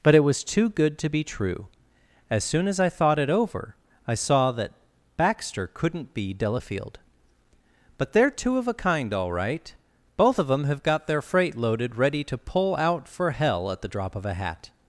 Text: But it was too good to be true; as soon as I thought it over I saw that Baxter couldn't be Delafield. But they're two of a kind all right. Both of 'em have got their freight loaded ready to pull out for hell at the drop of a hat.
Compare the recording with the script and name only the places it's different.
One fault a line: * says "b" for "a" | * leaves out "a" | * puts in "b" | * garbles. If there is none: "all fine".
* says "them" for "em"